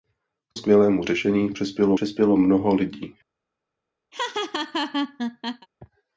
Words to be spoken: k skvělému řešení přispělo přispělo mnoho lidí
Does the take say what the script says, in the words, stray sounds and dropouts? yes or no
no